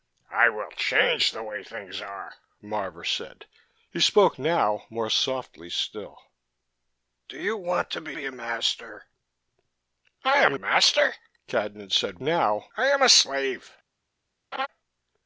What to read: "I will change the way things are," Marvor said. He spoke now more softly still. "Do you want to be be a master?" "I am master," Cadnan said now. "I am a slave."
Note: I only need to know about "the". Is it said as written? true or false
true